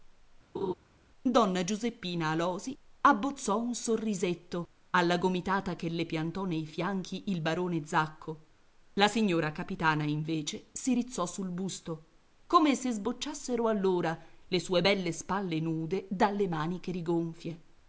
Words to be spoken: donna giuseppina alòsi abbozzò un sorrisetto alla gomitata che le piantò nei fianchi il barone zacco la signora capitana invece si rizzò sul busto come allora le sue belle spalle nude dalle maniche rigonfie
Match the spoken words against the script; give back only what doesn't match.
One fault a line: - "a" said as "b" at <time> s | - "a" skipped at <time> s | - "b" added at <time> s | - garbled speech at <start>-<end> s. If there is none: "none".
- "se sbocciassero" added at 12.7 s